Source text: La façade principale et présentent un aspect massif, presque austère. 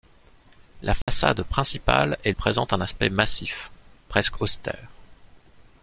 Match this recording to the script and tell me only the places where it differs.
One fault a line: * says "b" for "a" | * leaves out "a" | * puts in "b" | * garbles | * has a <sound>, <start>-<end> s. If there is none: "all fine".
* has a dropout, 1.0-1.1 s